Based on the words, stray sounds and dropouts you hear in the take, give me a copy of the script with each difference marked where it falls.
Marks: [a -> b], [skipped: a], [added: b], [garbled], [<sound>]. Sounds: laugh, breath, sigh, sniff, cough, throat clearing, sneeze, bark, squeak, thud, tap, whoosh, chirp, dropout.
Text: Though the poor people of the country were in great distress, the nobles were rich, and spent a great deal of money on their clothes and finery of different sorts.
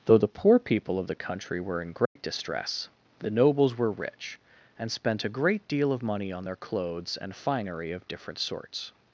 Though the poor people of the country were in great [dropout] distress, the nobles were rich, and spent a great deal of money on their clothes and finery of different sorts.